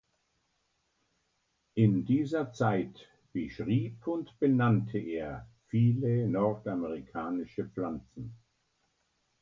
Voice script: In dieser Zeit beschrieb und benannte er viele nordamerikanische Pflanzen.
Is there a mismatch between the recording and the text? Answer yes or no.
no